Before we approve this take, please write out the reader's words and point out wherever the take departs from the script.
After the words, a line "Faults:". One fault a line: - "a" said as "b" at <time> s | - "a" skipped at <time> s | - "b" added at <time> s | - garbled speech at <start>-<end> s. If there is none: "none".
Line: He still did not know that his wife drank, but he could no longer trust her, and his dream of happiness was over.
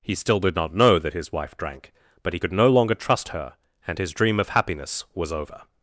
He still did not know that his wife drank, but he could no longer trust her, and his dream of happiness was over.
Faults:
none